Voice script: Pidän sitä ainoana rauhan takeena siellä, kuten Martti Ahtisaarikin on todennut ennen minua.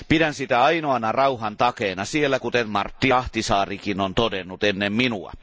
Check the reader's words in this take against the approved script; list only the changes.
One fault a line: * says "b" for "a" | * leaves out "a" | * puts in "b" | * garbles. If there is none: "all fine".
all fine